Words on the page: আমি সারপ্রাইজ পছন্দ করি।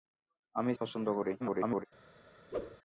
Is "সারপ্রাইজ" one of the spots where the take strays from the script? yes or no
yes